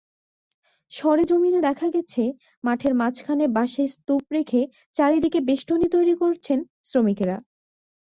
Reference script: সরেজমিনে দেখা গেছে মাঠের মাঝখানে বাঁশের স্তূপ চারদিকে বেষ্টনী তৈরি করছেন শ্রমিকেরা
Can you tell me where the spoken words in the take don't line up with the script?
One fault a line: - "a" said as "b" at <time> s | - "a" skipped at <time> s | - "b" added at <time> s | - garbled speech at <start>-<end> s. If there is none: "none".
- "রেখে" added at 4.3 s